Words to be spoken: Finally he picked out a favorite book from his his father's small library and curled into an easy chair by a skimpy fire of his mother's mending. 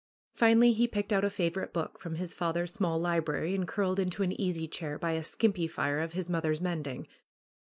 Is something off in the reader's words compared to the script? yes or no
yes